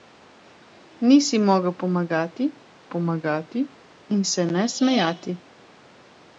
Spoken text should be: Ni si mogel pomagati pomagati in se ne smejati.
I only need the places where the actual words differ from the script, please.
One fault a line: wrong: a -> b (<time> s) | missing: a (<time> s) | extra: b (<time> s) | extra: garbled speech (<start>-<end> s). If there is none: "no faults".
no faults